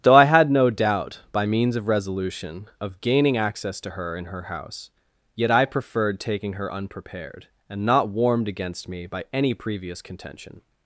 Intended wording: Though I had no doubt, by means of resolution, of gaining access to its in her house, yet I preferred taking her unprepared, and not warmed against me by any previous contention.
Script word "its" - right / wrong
wrong